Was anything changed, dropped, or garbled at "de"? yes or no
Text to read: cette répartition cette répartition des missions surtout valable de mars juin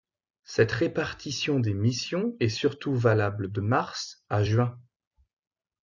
no